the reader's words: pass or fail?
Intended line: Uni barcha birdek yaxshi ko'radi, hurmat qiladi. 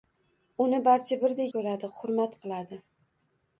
fail